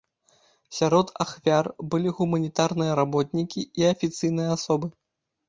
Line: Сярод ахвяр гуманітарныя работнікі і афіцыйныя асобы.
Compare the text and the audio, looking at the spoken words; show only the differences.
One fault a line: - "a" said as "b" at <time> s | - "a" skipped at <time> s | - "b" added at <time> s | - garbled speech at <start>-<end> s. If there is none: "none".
- "былі" added at 1.9 s